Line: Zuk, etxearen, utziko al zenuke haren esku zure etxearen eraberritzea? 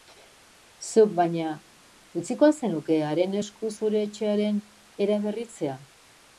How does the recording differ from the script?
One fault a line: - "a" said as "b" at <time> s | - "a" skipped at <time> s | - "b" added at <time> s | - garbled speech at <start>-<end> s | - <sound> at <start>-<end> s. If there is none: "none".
- "etxearen" said as "baina" at 1.2 s